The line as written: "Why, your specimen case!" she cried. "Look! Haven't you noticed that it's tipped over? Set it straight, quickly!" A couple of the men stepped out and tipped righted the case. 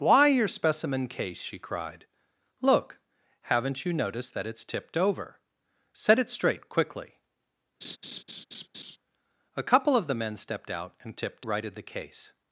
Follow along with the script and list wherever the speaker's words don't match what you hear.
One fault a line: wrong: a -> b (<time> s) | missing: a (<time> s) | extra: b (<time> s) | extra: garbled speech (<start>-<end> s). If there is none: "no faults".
no faults